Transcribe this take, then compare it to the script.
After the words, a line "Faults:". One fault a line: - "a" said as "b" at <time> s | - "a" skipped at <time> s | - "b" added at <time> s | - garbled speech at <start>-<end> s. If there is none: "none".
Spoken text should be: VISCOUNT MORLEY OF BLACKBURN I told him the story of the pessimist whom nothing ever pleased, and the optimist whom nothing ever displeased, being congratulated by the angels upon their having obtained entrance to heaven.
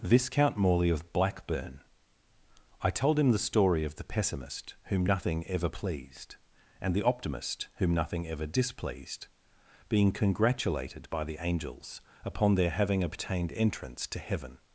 VISCOUNT MORLEY OF BLACKBURN I told him the story of the pessimist whom nothing ever pleased, and the optimist whom nothing ever displeased, being congratulated by the angels upon their having obtained entrance to heaven.
Faults:
none